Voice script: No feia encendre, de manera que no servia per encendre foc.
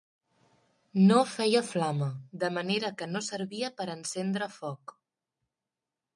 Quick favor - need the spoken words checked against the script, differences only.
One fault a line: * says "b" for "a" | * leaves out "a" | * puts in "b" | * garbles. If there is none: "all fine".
* says "flama" for "encendre"